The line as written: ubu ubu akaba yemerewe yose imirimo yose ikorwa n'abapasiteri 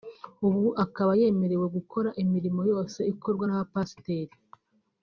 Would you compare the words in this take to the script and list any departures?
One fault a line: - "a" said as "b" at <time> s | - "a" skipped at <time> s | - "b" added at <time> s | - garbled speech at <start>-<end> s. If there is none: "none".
- "ubu" skipped at 0.7 s
- "yose" said as "gukora" at 1.8 s